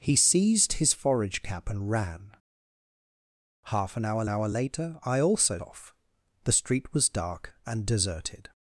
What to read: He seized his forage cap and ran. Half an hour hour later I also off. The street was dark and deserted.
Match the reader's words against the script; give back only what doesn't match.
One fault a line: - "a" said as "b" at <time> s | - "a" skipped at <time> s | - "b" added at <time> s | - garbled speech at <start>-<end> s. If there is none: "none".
none